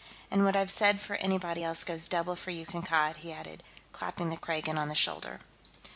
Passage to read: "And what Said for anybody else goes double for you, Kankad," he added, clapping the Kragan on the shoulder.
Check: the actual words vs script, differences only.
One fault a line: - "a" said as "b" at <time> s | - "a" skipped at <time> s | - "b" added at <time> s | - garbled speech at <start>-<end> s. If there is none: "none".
- "I've" added at 0.6 s